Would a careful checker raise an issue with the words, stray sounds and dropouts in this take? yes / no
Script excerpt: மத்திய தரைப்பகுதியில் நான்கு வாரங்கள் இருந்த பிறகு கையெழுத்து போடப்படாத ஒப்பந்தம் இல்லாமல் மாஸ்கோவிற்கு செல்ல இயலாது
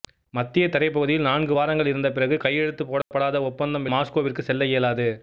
yes